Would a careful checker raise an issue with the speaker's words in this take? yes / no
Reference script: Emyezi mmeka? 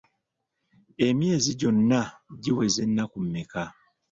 yes